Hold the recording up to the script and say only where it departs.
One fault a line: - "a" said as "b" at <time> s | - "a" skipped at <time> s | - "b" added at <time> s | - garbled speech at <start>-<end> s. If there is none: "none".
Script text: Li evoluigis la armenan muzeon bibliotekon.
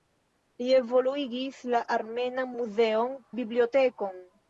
none